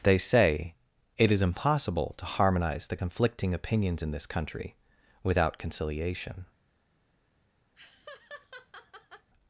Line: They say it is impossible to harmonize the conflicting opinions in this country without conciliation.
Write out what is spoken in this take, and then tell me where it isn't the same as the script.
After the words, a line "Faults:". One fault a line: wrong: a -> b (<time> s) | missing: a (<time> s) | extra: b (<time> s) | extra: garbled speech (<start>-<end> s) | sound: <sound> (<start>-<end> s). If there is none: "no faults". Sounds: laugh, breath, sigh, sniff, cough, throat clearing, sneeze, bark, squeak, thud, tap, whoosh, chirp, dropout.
They say it is impossible to harmonize the conflicting opinions in this country without conciliation.
Faults:
sound: laugh (7.8-9.3 s)